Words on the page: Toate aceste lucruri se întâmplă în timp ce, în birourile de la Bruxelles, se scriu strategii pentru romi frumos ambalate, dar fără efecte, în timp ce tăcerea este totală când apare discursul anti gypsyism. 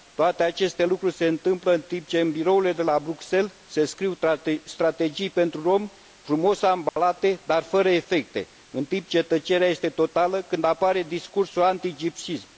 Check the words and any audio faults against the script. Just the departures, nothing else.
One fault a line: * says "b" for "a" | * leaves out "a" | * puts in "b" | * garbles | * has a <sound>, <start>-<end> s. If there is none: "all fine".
* has a dropout, 6.9-7.0 s